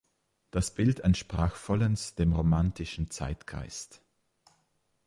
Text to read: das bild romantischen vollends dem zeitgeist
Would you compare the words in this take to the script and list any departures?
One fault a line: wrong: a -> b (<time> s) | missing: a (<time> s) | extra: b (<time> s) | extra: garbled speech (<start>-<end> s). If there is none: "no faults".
wrong: romantischen -> entsprach (1.0 s)
extra: romantischen (2.3 s)